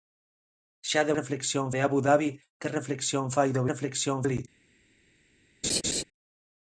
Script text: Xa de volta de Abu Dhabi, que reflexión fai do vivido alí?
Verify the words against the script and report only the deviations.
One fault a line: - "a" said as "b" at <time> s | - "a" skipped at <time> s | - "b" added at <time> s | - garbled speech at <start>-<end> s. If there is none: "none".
- "volta" said as "reflexión" at 1.2 s
- "vivido" said as "reflexión" at 3.7 s